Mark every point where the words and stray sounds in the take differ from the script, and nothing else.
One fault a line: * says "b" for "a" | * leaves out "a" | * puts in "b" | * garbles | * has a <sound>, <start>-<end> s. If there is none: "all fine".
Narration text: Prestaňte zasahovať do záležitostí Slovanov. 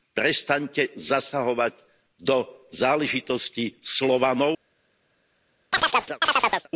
* has a chirp, 5.7-6.7 s